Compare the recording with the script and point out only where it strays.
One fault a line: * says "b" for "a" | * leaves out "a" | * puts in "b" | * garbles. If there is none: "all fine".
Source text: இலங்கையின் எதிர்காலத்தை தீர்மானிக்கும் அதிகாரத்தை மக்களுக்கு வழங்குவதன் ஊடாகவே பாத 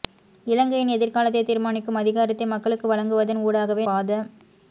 all fine